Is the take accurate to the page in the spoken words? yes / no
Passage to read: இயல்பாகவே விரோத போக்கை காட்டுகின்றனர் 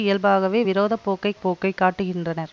no